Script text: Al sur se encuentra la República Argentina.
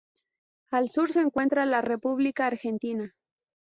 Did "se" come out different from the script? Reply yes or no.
no